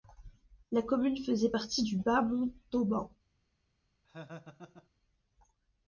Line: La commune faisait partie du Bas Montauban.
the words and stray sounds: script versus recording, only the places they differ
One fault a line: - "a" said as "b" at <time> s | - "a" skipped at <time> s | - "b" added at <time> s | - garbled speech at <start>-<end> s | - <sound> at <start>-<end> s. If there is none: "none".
- laugh at 4.0-4.9 s